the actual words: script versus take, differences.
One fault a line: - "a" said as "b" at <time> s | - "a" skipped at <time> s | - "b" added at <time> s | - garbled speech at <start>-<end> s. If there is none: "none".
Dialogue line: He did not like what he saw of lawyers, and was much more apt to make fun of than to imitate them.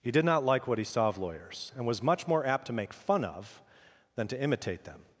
none